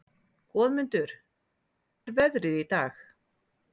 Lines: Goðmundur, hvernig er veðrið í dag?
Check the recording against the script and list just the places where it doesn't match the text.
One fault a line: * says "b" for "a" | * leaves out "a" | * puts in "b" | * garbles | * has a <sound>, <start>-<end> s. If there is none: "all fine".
* leaves out "hvernig"